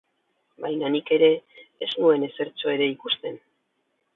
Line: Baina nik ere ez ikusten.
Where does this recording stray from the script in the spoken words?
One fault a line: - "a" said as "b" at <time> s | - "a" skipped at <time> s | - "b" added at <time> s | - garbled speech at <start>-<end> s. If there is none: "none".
- "nuen ezertxo ere" added at 2.0 s